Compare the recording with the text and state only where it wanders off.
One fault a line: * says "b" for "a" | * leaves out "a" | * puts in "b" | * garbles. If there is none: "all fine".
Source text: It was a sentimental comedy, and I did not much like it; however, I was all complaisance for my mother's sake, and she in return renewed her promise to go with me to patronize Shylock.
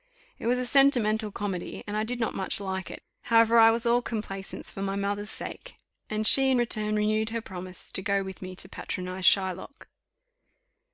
all fine